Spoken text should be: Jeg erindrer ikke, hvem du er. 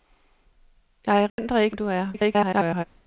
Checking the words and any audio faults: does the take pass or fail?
fail